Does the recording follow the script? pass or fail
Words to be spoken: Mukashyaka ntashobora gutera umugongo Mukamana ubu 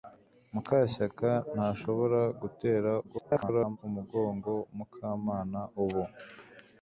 fail